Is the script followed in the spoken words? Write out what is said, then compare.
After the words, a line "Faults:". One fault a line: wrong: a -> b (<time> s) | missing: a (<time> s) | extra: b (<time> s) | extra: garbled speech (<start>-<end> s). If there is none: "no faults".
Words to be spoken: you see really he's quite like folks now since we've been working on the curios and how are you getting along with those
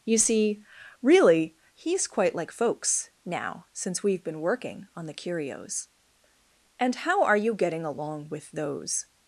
you see really he's quite like folks now since we've been working on the curios and how are you getting along with those
Faults:
no faults